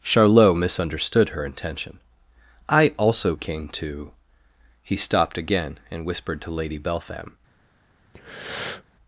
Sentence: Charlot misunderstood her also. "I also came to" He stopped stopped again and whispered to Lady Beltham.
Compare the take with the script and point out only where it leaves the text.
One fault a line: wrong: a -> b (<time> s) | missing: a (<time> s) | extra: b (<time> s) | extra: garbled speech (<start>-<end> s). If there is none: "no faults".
wrong: also -> intention (1.4 s)
missing: stopped (5.4 s)